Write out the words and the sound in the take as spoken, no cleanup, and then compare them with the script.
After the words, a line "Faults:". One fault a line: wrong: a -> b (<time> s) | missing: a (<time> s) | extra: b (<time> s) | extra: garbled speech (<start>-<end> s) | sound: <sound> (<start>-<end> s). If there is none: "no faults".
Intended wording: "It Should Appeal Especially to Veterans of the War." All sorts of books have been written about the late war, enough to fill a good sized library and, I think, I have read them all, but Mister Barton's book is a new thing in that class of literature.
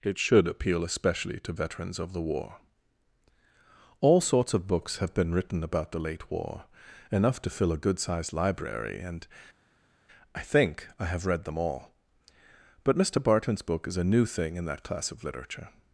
"It Should Appeal Especially to Veterans of the War." All sorts of books have been written about the late war, enough to fill a good sized library and, I think, I have read them all, but Mister Barton's book is a new thing in that class of literature.
Faults:
no faults